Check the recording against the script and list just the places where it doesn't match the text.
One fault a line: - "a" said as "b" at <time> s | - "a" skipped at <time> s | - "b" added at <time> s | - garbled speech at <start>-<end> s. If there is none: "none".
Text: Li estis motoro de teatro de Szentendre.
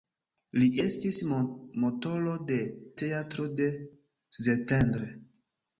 none